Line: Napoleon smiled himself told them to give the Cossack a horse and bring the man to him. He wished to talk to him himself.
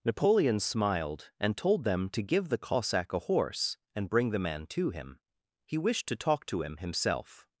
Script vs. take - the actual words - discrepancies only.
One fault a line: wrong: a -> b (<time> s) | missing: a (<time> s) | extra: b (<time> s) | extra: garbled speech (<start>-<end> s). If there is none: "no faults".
wrong: himself -> and (1.4 s)